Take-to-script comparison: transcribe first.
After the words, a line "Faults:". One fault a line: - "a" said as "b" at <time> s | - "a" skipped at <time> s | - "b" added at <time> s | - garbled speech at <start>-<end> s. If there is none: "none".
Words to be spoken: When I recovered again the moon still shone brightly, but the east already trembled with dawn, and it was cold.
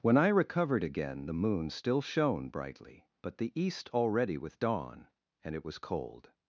When I recovered again the moon still shone brightly, but the east already with dawn, and it was cold.
Faults:
- "trembled" skipped at 4.3 s